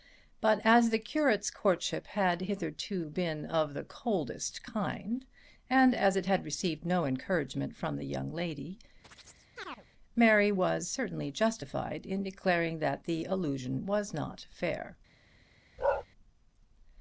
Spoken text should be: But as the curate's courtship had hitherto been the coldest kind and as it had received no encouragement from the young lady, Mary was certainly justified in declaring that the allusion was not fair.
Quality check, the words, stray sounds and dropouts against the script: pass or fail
fail